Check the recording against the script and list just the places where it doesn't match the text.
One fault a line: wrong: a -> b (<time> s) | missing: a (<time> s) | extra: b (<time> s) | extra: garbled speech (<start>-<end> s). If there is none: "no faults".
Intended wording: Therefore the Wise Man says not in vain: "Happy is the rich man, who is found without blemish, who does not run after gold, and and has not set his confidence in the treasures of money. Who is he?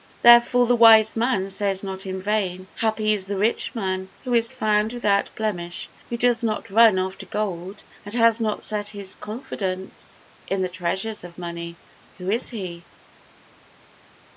missing: and (8.2 s)